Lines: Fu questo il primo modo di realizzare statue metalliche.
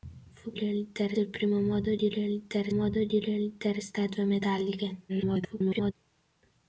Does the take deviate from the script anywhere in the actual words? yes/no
yes